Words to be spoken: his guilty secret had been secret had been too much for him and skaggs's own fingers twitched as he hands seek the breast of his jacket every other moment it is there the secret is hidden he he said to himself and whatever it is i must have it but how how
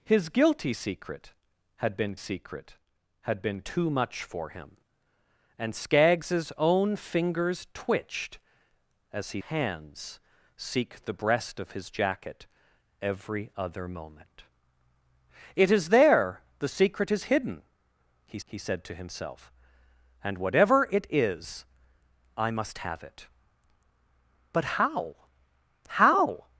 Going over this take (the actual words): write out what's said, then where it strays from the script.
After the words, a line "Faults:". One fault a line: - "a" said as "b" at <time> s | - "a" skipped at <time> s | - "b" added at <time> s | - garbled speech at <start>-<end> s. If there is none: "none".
his guilty secret had been secret had been too much for him and skaggs's own fingers twitched as he hands seek the breast of his jacket every other moment it is there the secret is hidden he he said to himself and whatever it is i must have it but how how
Faults:
none